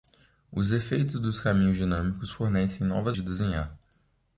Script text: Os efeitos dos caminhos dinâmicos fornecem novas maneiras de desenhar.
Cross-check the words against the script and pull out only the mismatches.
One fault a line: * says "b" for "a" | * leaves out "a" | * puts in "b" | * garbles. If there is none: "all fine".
* leaves out "maneiras"